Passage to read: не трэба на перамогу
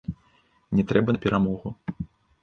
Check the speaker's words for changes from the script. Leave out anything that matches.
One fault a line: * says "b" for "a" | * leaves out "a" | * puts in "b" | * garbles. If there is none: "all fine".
all fine